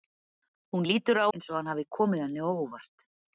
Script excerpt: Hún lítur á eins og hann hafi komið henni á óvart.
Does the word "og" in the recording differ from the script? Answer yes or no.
no